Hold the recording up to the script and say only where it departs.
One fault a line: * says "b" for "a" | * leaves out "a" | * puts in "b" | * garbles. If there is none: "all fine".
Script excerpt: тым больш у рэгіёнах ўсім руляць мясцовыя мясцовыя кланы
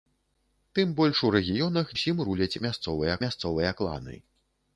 all fine